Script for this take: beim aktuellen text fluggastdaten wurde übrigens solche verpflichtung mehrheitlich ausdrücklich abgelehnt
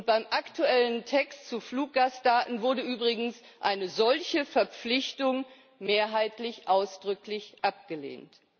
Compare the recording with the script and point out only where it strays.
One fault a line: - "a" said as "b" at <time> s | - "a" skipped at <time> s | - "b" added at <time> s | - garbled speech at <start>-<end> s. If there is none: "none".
- "zu" added at 1.5 s
- "eine" added at 3.6 s